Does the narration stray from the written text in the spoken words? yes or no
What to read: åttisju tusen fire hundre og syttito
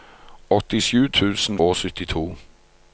yes